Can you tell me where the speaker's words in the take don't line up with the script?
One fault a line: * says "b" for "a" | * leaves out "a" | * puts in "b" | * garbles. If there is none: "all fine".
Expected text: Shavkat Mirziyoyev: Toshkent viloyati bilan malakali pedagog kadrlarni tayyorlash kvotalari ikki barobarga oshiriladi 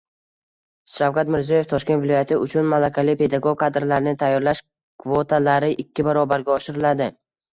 * says "uchun" for "bilan"